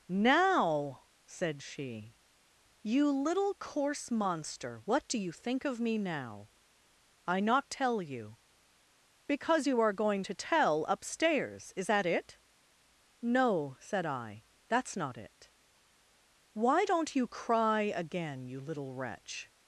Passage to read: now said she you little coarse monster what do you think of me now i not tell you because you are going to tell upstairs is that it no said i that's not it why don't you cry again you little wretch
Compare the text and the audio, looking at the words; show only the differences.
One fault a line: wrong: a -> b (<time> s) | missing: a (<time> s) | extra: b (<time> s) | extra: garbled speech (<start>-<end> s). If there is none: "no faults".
no faults